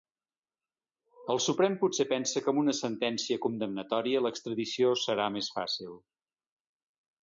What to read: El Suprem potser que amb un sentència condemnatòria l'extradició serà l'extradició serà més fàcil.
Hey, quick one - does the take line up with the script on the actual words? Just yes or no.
no